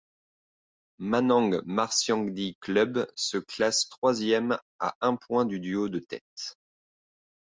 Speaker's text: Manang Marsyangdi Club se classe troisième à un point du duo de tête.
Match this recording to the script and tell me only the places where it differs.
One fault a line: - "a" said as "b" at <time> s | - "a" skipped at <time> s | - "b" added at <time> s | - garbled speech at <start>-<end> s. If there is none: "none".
none